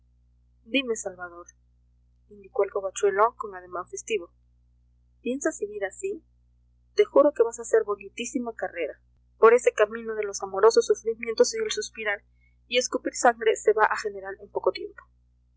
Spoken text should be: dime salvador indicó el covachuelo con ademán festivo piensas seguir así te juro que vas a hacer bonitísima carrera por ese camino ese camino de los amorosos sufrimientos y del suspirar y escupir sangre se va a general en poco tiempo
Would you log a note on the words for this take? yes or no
yes